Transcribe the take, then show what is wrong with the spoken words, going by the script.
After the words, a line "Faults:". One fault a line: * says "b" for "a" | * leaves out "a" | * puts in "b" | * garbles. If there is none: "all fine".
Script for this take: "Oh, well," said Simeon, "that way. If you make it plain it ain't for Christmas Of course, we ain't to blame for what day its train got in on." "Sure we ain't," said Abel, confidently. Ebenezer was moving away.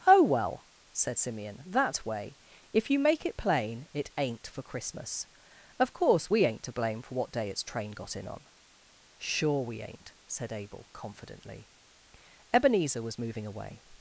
"Oh, well," said Simeon, "that way. If you make it plain it ain't for Christmas Of course, we ain't to blame for what day its train got in on." "Sure we ain't," said Abel, confidently. Ebenezer was moving away.
Faults:
all fine